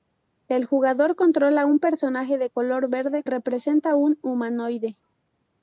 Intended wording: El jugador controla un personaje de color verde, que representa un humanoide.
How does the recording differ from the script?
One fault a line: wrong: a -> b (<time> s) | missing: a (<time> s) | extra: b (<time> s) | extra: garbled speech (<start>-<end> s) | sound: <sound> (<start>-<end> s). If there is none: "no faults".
missing: que (3.2 s)